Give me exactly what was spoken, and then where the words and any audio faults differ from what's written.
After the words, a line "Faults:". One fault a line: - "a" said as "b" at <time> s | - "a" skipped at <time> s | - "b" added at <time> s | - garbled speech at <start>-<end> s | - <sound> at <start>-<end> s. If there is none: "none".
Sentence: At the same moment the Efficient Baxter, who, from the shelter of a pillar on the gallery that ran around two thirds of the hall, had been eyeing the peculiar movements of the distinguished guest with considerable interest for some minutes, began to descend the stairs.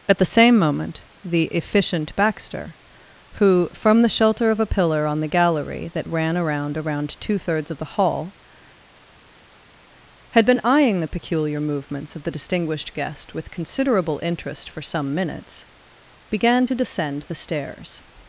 At the same moment the Efficient Baxter, who, from the shelter of a pillar on the gallery that ran around around two thirds of the hall, had been eyeing the peculiar movements of the distinguished guest with considerable interest for some minutes, began to descend the stairs.
Faults:
- "around" added at 6.8 s